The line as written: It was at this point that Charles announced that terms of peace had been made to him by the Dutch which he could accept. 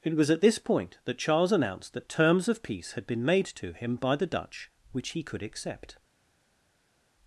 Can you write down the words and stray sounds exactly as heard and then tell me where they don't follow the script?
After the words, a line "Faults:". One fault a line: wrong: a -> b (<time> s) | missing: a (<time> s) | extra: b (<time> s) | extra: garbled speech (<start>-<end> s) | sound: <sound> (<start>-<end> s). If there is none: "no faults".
It was at this point that Charles announced that terms of peace had been made to him by the Dutch which he could accept.
Faults:
no faults